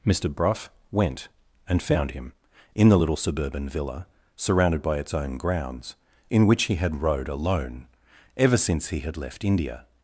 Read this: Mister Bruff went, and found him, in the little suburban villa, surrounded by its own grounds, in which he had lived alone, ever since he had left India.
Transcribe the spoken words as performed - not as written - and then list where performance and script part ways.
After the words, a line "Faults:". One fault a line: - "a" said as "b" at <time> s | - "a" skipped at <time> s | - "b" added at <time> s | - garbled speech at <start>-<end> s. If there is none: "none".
Mister Bruff went, and found him, in the little suburban villa, surrounded by its own grounds, in which he had rowed alone, ever since he had left India.
Faults:
- "lived" said as "rowed" at 7.0 s